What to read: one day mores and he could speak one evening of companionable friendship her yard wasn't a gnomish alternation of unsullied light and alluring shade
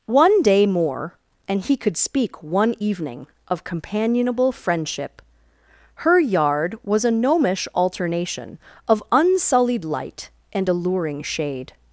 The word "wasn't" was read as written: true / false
false